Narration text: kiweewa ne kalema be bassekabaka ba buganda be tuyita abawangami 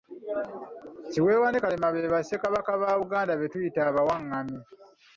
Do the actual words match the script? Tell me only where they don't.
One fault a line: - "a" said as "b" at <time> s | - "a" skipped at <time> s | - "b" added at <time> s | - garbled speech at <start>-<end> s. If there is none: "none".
none